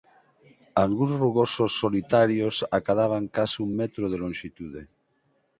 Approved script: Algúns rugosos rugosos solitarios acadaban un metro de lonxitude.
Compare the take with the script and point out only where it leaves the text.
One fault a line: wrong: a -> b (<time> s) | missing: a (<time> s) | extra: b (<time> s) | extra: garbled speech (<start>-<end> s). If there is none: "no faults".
missing: rugosos (1.7 s)
extra: case (3.4 s)